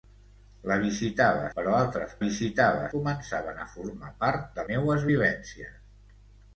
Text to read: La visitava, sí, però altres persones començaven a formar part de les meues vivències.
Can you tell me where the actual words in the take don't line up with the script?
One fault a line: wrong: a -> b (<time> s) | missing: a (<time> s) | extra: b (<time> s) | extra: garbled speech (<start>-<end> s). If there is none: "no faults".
missing: sí (1.4 s)
wrong: persones -> visitava (2.2 s)
missing: les (4.7 s)